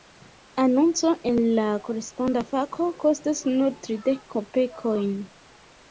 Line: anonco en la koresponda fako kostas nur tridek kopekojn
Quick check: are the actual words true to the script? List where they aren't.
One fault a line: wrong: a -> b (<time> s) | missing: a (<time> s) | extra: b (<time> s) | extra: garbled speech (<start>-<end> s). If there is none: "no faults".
no faults